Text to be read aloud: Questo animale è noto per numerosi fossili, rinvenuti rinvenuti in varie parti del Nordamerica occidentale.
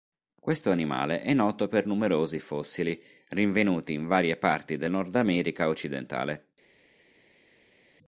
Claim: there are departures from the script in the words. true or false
true